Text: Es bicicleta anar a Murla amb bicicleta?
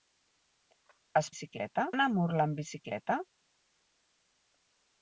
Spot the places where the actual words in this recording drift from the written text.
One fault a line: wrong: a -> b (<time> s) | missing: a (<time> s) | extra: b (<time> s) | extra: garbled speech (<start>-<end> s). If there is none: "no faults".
no faults